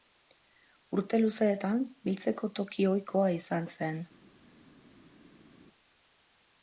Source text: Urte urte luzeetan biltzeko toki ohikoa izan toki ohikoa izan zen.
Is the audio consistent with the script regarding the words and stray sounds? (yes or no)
no